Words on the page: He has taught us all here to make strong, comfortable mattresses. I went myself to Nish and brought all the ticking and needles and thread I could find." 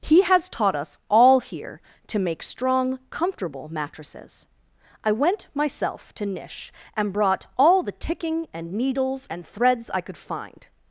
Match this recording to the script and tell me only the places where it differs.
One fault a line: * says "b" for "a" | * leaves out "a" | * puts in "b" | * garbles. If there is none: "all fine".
* says "threads" for "thread"